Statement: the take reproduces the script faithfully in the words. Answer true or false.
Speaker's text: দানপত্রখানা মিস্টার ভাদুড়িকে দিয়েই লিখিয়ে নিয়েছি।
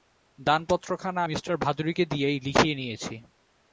true